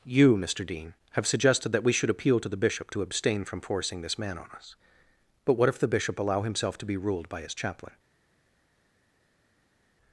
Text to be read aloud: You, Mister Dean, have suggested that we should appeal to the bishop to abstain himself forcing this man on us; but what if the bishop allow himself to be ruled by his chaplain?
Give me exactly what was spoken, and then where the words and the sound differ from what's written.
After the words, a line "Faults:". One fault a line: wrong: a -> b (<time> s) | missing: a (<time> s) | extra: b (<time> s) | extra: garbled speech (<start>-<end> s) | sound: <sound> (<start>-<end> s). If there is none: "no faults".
You, Mister Dean, have suggested that we should appeal to the bishop to abstain from forcing this man on us; but what if the bishop allow himself to be ruled by his chaplain?
Faults:
wrong: himself -> from (3.5 s)